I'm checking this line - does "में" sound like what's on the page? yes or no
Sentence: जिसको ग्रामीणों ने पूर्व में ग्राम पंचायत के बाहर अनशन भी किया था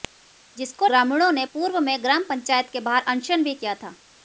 yes